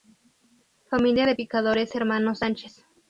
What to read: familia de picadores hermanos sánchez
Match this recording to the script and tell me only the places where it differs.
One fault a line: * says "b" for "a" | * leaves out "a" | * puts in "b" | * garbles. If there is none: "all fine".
all fine